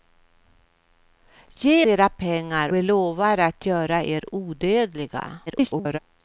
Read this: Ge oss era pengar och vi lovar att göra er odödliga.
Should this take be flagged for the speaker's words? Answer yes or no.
yes